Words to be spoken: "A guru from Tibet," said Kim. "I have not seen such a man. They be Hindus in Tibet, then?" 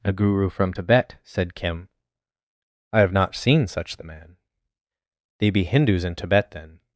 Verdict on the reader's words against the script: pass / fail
fail